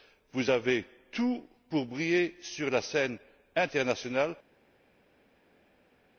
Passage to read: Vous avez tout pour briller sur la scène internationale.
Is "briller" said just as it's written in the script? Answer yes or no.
yes